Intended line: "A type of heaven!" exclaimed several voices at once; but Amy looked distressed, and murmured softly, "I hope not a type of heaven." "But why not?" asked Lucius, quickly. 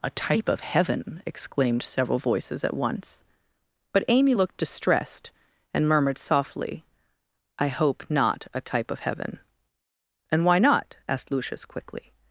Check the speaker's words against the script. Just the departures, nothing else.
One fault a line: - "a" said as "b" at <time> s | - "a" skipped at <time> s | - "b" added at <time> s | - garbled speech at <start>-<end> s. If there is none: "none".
- "But" said as "And" at 10.3 s